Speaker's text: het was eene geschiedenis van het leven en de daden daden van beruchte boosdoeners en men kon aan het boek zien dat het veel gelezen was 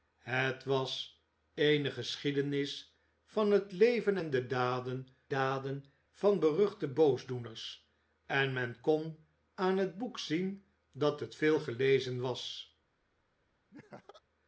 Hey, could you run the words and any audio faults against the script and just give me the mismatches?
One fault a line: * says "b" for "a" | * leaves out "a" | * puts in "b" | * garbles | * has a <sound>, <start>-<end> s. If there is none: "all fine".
* has a laugh, 13.7-14.2 s